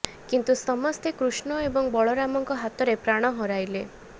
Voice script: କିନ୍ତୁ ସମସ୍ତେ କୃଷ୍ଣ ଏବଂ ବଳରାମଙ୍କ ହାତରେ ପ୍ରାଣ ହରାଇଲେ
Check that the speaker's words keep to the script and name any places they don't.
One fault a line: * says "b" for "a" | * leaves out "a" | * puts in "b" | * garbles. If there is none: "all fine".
all fine